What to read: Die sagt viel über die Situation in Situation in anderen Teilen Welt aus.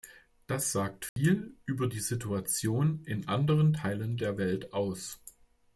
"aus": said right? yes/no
yes